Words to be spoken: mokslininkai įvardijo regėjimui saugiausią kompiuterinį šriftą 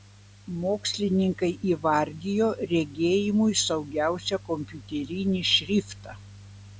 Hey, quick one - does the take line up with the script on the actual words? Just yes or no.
yes